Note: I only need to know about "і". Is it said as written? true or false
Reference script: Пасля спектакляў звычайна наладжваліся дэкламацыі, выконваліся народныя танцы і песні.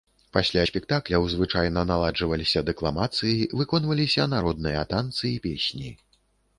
true